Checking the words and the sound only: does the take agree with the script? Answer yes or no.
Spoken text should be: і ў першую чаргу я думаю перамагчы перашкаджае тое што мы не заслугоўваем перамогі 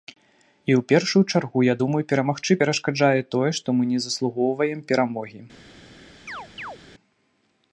no